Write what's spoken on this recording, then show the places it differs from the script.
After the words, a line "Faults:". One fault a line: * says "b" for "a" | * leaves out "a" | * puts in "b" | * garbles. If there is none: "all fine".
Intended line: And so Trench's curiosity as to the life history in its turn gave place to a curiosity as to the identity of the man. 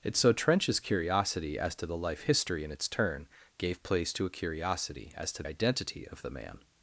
And so Trench's curiosity as to the life history in its turn gave place to a curiosity as to identity of the man.
Faults:
* leaves out "the"